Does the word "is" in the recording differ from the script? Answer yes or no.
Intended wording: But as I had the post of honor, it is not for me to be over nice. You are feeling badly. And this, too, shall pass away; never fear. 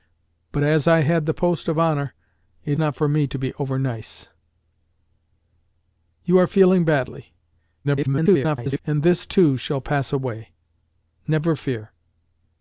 yes